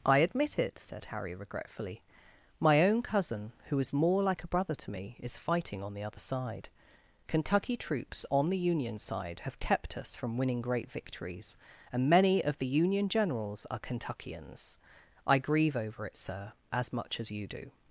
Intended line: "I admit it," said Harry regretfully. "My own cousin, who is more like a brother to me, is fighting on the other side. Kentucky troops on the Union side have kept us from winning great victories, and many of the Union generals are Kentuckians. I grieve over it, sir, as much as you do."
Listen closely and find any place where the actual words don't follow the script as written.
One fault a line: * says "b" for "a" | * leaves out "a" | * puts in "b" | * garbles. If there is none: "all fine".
all fine